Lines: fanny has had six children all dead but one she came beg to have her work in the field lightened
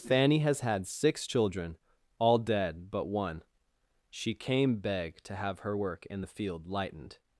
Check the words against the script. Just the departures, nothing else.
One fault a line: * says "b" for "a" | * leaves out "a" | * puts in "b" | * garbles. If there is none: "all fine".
all fine